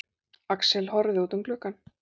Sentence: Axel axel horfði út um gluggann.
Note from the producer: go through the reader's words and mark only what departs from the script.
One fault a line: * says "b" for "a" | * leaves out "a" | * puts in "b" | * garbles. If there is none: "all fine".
* leaves out "axel"